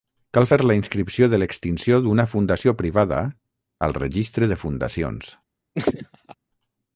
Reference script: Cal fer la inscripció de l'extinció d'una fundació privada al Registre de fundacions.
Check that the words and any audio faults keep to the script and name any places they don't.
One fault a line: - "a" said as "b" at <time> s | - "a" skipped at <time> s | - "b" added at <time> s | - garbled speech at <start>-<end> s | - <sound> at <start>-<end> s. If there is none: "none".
- laugh at 5.7-6.3 s